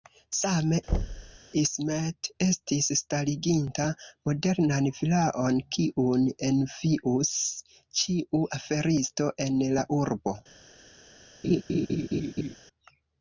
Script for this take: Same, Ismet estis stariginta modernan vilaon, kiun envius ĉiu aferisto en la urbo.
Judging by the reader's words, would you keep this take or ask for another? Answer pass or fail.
pass